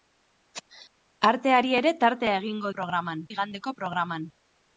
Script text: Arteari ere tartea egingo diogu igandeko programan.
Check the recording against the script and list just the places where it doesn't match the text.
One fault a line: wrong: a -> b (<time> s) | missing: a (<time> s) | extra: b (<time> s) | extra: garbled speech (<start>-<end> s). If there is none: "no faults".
wrong: diogu -> programan (2.7 s)